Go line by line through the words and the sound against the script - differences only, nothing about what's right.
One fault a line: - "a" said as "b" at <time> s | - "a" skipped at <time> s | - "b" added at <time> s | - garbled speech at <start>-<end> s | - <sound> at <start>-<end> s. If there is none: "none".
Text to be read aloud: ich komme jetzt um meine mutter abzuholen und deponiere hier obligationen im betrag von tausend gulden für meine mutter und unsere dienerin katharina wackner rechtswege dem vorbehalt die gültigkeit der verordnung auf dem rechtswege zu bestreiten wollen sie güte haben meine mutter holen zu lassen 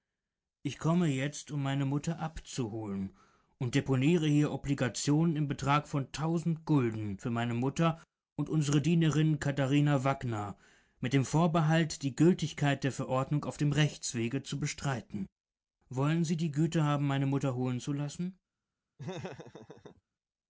- "rechtswege" said as "mit" at 11.0 s
- "die" added at 16.4 s
- laugh at 19.0-20.0 s